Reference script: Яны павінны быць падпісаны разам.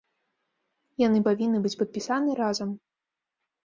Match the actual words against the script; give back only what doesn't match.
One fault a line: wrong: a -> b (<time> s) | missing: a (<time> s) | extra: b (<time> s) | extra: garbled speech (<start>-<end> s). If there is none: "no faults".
no faults